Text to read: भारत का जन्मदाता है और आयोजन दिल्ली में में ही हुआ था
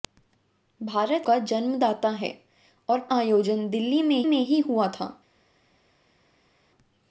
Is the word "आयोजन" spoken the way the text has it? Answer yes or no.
yes